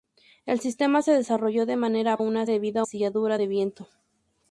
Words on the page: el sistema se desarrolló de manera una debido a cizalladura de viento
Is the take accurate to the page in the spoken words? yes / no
yes